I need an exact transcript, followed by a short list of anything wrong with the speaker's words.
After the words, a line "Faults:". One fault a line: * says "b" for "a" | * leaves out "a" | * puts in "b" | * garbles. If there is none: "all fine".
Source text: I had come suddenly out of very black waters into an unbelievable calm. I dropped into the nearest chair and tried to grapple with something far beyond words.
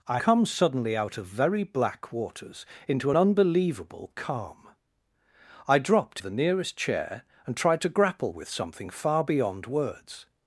I come suddenly out of very black waters into unbelievable calm. I dropped the nearest chair and tried to grapple with something far beyond words.
Faults:
* leaves out "had"
* leaves out "an"
* leaves out "into"